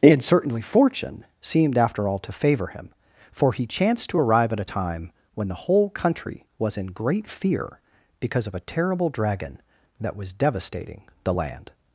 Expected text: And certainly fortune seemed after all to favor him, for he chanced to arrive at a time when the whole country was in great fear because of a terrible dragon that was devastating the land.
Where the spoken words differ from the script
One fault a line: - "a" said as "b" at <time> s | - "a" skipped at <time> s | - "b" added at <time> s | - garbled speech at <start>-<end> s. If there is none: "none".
none